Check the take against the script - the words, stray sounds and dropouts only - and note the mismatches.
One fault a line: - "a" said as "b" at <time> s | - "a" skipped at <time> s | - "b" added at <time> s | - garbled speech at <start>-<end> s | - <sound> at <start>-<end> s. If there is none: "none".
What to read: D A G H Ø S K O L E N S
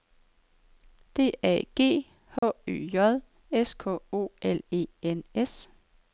- dropout at 2.4-2.4 s
- "J" added at 2.9 s